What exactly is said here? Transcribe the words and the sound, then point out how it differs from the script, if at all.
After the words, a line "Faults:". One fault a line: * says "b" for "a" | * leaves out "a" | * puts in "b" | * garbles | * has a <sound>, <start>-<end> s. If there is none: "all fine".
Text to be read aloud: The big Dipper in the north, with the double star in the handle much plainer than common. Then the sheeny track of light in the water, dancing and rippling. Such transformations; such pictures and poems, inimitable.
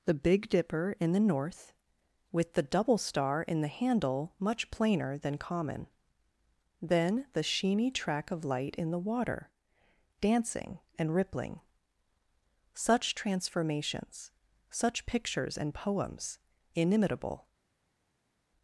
The big Dipper in the north, with the double star in the handle much plainer than common. Then the sheeny track of light in the water, dancing and rippling. Such transformations; such pictures and poems, inimitable.
Faults:
all fine